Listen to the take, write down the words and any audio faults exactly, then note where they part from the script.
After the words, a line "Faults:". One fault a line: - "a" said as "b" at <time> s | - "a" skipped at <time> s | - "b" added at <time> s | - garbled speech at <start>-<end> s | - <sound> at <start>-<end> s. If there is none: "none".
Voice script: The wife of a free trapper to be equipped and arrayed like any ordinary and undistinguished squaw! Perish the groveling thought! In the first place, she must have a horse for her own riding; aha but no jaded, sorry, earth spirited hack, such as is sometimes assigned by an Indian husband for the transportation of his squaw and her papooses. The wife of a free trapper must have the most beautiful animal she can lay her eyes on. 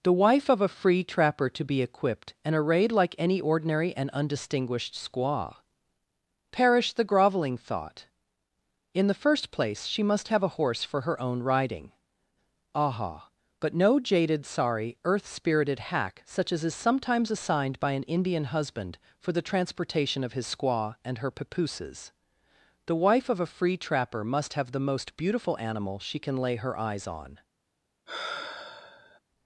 The wife of a free trapper to be equipped and arrayed like any ordinary and undistinguished squaw! Perish the groveling thought! In the first place, she must have a horse for her own riding; aha but no jaded, sorry, earth spirited hack, such as is sometimes assigned by an Indian husband for the transportation of his squaw and her papooses. The wife of a free trapper must have the most beautiful animal she can lay her eyes on.
Faults:
- sigh at 28.1-29.2 s